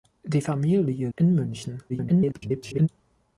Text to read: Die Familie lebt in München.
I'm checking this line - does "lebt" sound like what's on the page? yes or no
no